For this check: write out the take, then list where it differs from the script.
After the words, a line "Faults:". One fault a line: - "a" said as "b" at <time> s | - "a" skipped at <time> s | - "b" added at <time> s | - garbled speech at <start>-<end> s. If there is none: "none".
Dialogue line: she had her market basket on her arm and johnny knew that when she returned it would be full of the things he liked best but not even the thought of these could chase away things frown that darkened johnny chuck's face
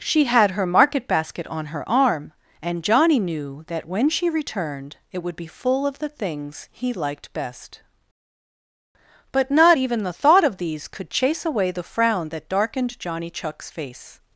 she had her market basket on her arm and johnny knew that when she returned it would be full of the things he liked best but not even the thought of these could chase away the frown that darkened johnny chuck's face
Faults:
- "things" said as "the" at 11.7 s